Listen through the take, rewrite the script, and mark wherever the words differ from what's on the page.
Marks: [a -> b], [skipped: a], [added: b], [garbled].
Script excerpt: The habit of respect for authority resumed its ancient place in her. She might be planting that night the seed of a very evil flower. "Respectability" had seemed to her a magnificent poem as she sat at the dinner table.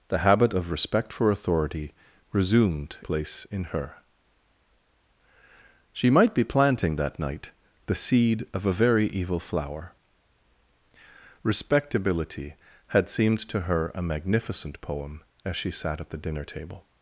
The habit of respect for authority resumed [skipped: its ancient] place in her. She might be planting that night the seed of a very evil flower. "Respectability" had seemed to her a magnificent poem as she sat at the dinner table.